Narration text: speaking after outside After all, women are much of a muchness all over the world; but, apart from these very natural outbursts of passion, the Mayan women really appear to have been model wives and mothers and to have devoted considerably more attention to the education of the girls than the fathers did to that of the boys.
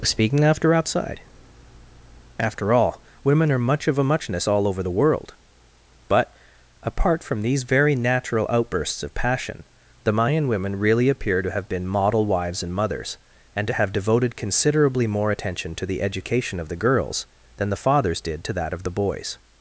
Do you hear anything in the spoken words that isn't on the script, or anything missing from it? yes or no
no